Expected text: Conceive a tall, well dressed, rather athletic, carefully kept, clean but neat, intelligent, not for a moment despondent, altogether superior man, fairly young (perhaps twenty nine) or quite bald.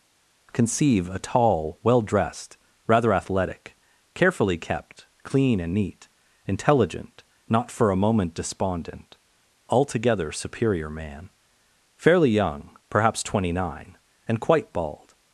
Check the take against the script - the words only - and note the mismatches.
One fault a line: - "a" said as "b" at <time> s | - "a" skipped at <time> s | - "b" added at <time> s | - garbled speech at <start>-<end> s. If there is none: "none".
- "but" said as "and" at 5.6 s
- "or" said as "and" at 14.3 s